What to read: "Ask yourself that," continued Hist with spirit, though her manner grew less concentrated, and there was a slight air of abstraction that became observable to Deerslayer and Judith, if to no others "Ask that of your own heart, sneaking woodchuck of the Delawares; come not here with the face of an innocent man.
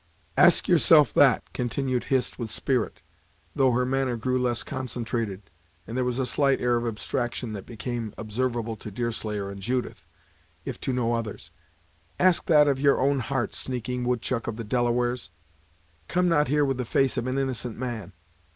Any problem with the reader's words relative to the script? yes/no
no